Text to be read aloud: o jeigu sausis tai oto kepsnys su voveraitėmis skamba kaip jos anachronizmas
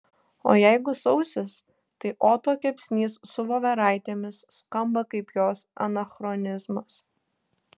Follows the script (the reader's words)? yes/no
yes